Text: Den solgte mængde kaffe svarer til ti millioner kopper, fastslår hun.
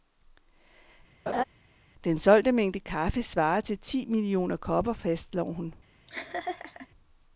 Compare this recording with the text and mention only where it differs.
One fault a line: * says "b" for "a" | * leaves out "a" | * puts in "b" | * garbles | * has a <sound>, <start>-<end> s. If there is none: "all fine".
* has a laugh, 1.3-1.4 s
* has a laugh, 6.1-6.9 s